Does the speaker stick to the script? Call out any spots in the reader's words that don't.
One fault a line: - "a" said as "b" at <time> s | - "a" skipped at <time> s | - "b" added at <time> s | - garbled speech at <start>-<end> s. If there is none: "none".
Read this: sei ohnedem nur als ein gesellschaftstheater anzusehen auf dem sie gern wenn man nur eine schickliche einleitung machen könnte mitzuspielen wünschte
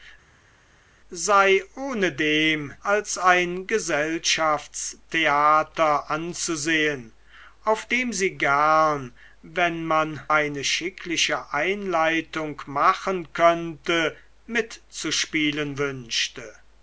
- "nur" skipped at 2.7 s
- "nur" skipped at 10.3 s